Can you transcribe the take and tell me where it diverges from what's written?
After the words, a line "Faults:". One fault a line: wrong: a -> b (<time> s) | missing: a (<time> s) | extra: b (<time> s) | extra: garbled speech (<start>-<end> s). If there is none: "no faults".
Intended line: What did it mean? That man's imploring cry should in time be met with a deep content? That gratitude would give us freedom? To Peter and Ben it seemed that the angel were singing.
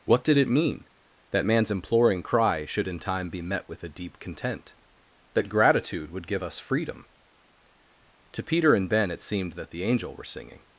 What did it mean? That man's imploring cry should in time be met with a deep content? That gratitude would give us freedom? To Peter and Ben it seemed that the angel were singing.
Faults:
no faults